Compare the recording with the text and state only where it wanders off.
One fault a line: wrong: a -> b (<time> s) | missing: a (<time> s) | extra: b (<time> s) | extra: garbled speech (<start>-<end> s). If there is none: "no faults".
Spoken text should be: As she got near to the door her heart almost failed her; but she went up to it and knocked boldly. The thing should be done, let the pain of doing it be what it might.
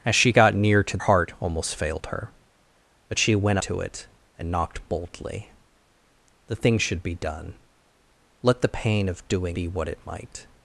missing: the door her (1.0 s)
missing: up (3.6 s)
missing: it (9.6 s)